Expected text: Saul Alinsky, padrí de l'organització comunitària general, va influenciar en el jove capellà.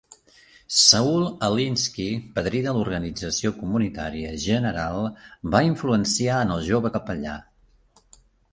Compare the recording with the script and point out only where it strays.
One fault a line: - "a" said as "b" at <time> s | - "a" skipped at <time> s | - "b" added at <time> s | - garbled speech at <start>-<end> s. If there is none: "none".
none